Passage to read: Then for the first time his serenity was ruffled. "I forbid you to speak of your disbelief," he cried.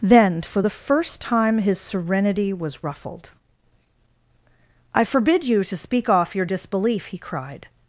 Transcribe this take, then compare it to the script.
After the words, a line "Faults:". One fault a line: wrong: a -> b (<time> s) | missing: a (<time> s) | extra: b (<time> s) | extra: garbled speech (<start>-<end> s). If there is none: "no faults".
Then for the first time his serenity was ruffled. "I forbid you to speak off your disbelief," he cried.
Faults:
wrong: of -> off (6.1 s)